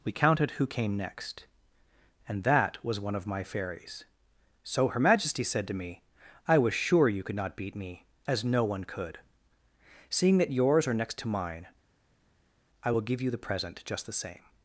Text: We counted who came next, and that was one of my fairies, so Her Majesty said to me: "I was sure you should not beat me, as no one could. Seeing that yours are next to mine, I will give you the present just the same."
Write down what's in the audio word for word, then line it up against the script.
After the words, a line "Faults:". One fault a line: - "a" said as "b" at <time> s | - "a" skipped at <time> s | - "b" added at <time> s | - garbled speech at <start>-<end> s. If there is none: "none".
We counted who came next, and that was one of my fairies, so Her Majesty said to me: "I was sure you could not beat me, as no one could. Seeing that yours are next to mine, I will give you the present just the same."
Faults:
- "should" said as "could" at 7.2 s